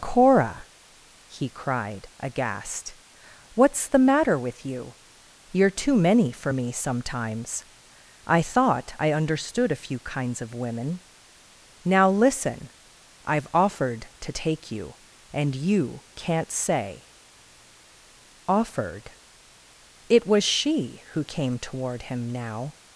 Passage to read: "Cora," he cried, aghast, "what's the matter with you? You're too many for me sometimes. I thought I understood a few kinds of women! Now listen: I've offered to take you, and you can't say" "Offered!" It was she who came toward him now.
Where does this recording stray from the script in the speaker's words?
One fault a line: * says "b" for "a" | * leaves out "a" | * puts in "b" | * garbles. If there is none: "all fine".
all fine